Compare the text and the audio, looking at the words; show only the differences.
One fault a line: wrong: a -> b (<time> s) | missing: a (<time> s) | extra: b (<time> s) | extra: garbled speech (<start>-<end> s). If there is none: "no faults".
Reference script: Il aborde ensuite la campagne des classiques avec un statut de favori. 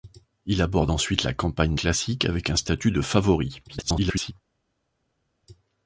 missing: des (1.7 s)
extra: garbled speech (3.7-4.3 s)